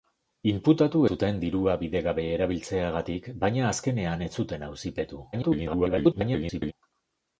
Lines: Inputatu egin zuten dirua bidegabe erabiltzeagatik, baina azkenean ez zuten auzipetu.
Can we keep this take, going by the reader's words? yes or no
no